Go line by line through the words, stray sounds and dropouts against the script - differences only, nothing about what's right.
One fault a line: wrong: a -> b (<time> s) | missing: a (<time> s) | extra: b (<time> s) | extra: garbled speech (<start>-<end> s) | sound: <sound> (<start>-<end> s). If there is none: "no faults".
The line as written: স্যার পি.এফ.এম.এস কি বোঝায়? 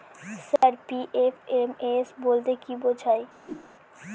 sound: dropout (0.6-0.6 s)
extra: বলতে (2.2 s)
sound: whoosh (3.4-3.7 s)